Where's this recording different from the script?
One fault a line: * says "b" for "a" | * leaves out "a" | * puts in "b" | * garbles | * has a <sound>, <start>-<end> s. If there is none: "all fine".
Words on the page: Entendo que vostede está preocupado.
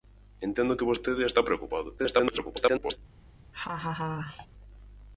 * garbles
* has a laugh, 3.5-4.5 s